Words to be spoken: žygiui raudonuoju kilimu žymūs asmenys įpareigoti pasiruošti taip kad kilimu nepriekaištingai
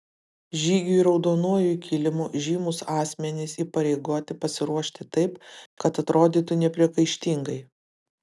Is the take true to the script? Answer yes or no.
no